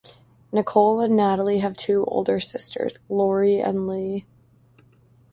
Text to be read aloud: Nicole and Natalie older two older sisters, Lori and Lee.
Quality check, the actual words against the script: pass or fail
fail